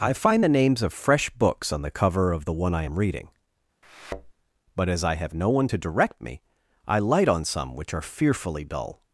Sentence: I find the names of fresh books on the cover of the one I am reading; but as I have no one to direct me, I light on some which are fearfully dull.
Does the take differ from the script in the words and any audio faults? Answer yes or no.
yes